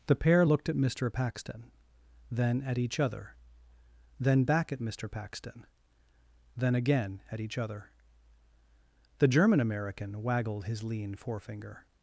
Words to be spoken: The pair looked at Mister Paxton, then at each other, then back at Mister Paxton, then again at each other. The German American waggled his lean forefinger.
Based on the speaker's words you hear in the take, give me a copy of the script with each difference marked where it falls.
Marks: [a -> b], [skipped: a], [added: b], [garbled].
The pair looked at Mister Paxton, then at each other, then back at Mister Paxton, then again at each other. The German American waggled his lean forefinger.